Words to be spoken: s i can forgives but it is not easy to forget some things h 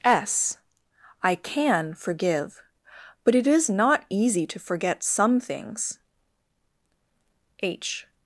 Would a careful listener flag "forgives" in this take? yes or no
yes